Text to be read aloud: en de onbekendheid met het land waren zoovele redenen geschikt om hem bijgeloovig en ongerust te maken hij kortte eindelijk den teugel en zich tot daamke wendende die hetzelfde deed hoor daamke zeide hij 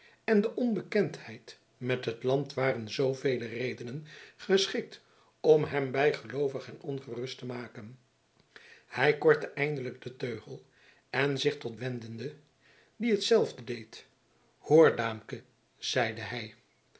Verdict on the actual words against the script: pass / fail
fail